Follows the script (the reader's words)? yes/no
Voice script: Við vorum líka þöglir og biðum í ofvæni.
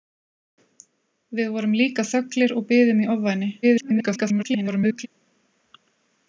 no